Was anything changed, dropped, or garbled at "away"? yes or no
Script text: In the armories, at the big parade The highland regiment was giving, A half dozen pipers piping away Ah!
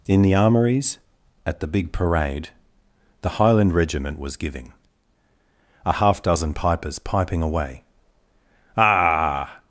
no